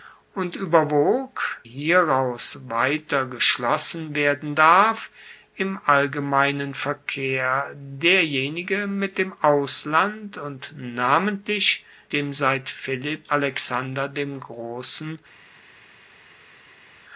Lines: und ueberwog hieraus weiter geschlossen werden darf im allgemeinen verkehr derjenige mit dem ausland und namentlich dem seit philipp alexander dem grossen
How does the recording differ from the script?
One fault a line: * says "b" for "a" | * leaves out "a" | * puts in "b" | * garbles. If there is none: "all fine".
all fine